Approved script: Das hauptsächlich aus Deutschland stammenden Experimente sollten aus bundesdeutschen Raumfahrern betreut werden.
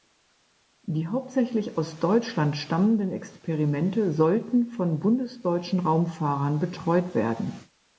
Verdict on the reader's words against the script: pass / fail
fail